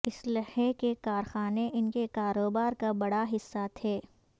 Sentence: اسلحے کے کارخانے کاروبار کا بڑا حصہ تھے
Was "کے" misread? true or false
false